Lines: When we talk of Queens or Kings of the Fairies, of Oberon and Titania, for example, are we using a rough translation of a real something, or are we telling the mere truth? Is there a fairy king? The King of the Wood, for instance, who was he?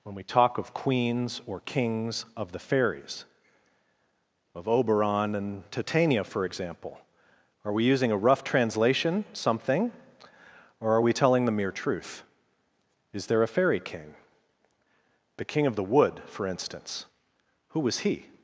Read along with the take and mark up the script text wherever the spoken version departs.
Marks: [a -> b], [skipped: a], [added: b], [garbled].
When we talk of Queens or Kings of the Fairies, of Oberon and Titania, for example, are we using a rough translation [skipped: of a real] something, or are we telling the mere truth? Is there a fairy king? The King of the Wood, for instance, who was he?